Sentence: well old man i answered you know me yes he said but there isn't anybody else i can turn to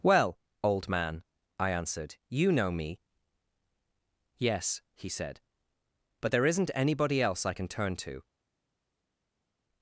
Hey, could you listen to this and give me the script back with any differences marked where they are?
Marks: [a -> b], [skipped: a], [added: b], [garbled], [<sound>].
well old man i answered you know me yes he said but there isn't anybody else i can turn to